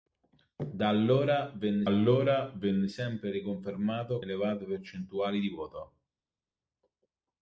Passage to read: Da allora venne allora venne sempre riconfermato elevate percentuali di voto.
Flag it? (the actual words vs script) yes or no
no